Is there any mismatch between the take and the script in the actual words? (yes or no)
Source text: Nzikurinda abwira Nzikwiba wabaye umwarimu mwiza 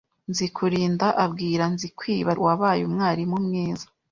no